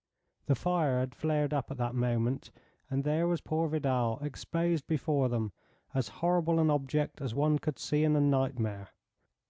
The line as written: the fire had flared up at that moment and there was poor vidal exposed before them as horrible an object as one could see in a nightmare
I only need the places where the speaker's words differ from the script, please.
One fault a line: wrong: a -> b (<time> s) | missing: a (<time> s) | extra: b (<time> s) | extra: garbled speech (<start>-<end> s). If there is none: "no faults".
no faults